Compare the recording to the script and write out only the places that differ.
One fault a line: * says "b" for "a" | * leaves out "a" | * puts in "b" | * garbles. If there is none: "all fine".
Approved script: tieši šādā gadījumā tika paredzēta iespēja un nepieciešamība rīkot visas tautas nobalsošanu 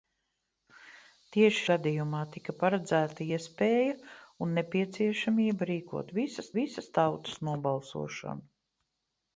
* leaves out "šādā"
* puts in "visas"